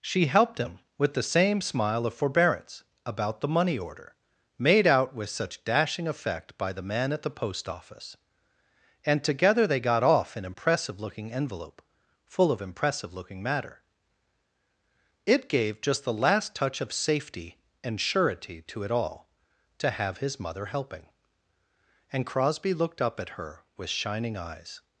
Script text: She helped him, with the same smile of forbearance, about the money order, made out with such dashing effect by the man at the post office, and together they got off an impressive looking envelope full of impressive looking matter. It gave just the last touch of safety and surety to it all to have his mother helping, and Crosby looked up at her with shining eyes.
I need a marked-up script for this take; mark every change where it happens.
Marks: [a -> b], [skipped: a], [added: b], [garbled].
She helped him, with the same smile of forbearance, about the money order, made out with such dashing effect by the man at the post office, and together they got off an impressive looking envelope full of impressive looking matter. It gave just the last touch of safety and surety to it all to have his mother helping, and Crosby looked up at her with shining eyes.